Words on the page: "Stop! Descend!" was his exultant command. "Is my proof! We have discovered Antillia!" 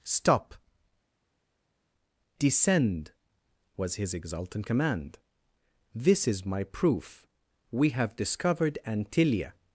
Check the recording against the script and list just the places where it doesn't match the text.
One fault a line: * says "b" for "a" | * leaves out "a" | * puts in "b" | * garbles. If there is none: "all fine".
* puts in "This"